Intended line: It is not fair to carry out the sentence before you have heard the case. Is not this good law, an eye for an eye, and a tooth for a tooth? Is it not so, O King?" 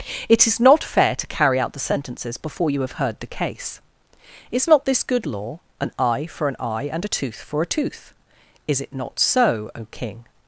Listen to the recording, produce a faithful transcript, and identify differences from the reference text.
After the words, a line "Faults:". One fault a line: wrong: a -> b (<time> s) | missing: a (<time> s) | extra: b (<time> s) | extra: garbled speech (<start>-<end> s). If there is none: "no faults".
It is not fair to carry out the sentences before you have heard the case. Is not this good law, an eye for an eye, and a tooth for a tooth? Is it not so, O King?"
Faults:
wrong: sentence -> sentences (1.8 s)